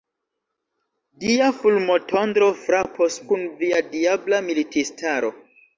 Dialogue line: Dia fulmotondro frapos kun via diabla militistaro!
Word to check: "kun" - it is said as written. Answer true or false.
true